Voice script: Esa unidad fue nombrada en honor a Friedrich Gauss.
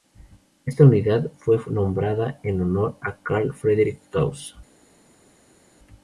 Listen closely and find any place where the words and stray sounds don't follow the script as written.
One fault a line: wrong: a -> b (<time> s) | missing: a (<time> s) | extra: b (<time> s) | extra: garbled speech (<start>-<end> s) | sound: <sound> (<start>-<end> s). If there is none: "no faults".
wrong: Esa -> Esta (0.7 s)
extra: Carl (3.2 s)